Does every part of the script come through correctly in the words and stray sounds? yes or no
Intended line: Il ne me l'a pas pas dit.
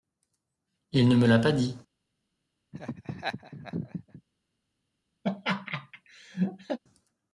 no